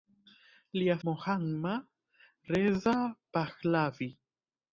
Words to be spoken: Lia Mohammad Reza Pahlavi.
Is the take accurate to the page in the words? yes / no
yes